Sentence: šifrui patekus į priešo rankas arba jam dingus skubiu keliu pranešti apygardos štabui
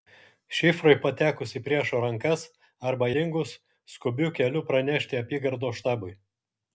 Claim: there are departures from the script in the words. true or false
true